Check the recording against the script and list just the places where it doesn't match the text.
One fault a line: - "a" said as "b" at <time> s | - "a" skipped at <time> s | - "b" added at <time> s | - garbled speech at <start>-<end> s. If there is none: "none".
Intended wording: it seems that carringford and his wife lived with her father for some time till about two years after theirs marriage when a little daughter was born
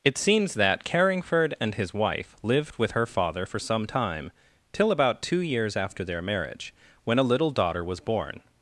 - "theirs" said as "their" at 6.0 s